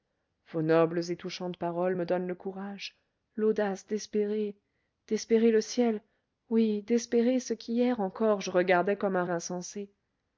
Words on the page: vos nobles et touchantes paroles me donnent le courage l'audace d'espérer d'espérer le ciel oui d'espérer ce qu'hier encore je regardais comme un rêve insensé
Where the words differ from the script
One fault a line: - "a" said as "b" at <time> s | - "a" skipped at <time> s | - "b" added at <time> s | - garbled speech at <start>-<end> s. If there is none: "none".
- "rêve" skipped at 9.2 s